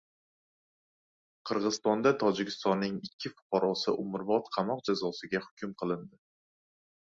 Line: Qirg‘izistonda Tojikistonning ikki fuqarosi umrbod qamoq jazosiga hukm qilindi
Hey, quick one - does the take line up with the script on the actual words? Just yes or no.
yes